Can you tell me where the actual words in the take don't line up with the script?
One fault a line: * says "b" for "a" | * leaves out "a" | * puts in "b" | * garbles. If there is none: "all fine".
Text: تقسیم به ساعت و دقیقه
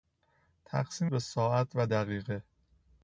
all fine